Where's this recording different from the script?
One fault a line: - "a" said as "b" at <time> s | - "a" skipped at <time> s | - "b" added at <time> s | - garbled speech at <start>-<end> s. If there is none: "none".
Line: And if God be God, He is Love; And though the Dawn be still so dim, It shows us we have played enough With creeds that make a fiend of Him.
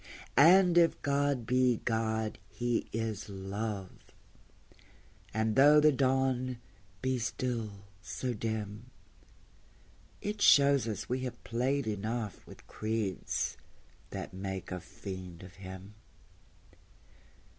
none